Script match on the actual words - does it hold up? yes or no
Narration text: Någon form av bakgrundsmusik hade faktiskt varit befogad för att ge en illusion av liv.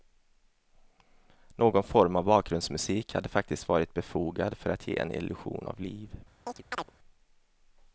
yes